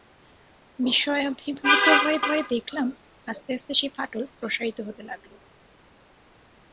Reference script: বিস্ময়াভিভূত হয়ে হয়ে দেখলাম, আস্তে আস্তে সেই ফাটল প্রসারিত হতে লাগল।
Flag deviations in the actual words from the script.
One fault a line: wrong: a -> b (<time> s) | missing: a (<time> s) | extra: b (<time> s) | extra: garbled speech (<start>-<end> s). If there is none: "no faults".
no faults